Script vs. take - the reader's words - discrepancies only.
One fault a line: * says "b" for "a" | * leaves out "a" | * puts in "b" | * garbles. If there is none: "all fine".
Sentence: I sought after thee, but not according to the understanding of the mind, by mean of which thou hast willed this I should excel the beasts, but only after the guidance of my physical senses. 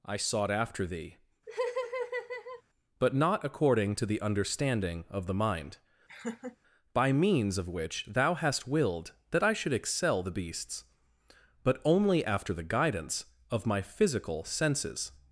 * says "means" for "mean"
* says "that" for "this"